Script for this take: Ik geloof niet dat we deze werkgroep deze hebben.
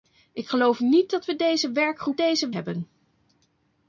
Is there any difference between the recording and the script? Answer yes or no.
no